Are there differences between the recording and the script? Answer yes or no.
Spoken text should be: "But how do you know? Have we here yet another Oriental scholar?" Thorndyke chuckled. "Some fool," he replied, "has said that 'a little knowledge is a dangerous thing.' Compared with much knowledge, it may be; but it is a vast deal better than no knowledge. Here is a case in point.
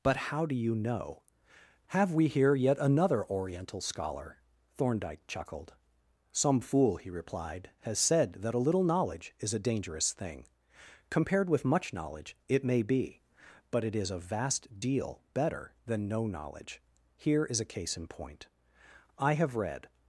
yes